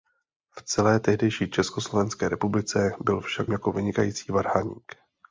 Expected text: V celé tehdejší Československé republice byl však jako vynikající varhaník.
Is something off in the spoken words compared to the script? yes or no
no